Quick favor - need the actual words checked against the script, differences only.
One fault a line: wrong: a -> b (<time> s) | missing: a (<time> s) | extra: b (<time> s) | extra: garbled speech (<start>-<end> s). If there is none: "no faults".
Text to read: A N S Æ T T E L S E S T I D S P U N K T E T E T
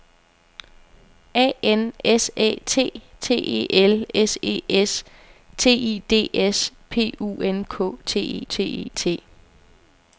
no faults